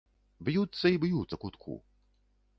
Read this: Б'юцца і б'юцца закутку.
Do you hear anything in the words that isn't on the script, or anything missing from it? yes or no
no